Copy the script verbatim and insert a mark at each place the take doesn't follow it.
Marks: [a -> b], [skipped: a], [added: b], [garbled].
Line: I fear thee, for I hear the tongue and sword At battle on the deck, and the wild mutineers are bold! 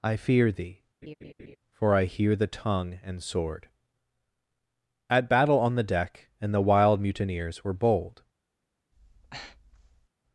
I fear thee, for I hear the tongue and sword At battle on the deck, and the wild mutineers [are -> were] bold!